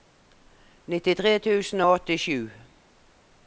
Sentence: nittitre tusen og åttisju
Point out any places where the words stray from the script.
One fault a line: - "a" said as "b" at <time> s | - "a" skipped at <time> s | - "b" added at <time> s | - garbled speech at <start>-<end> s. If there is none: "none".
none